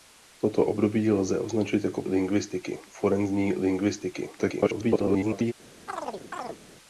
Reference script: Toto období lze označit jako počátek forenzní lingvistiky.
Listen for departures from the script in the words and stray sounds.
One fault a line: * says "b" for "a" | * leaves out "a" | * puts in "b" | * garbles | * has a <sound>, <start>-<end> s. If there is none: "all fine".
* says "lingvistiky" for "počátek"
* garbles
* has a chirp, 5.9-6.6 s